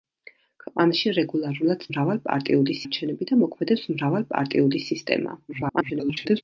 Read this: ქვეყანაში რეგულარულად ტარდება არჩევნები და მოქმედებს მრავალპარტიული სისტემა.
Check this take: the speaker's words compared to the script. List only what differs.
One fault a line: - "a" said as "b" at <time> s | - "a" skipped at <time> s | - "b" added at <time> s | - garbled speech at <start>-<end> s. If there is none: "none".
- "ტარდება" said as "მრავალპარტიული" at 1.9 s
- garbled speech at 5.5-6.4 s